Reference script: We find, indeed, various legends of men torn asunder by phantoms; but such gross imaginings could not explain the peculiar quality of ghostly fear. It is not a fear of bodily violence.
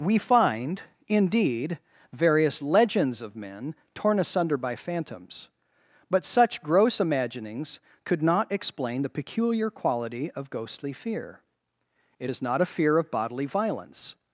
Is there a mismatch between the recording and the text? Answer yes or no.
no